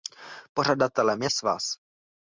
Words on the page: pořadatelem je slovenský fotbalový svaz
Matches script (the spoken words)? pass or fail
fail